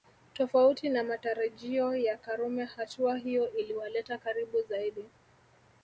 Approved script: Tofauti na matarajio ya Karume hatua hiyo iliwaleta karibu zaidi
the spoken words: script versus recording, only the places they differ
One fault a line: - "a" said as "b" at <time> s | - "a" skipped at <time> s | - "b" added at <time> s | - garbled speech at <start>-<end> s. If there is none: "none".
none